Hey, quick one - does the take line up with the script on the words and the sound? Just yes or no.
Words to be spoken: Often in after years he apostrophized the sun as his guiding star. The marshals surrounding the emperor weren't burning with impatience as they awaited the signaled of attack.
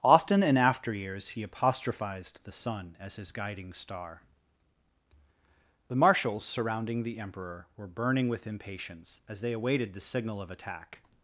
no